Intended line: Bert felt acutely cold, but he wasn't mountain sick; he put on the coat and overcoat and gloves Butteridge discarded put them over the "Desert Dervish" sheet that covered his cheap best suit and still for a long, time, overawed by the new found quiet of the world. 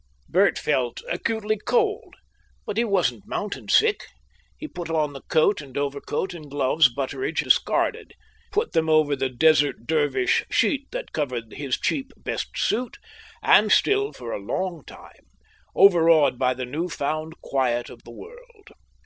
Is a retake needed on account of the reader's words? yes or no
no